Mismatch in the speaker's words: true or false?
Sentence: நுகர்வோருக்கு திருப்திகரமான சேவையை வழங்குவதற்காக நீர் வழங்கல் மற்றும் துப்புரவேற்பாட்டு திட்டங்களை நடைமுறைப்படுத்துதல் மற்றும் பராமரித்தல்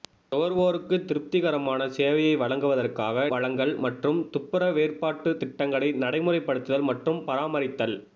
true